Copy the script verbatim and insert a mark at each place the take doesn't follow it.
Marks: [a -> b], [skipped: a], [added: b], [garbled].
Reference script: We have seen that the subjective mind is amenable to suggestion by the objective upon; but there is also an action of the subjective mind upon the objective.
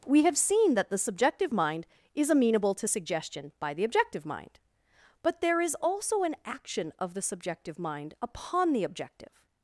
We have seen that the subjective mind is amenable to suggestion by the objective [upon; -> mind] but there is also an action of the subjective mind upon the objective.